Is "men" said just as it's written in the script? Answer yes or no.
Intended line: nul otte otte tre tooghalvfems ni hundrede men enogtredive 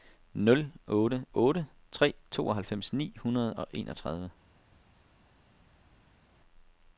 no